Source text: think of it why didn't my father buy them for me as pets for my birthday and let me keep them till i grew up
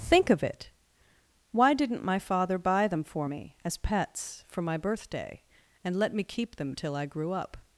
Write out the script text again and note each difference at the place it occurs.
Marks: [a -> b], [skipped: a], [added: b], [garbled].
think of it why didn't my father buy them for me as pets for my birthday and let me keep them till i grew up